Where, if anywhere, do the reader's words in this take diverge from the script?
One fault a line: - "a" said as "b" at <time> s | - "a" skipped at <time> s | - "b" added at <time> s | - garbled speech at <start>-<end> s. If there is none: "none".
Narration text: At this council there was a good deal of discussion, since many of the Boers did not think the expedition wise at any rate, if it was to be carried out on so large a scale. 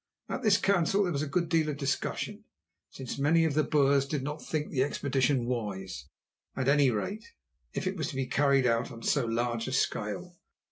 none